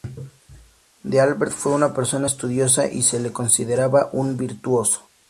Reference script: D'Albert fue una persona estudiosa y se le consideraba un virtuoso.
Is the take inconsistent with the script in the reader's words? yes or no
no